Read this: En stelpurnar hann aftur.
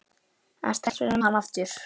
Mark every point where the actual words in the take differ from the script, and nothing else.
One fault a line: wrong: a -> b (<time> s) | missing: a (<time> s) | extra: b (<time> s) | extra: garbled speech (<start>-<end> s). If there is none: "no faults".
no faults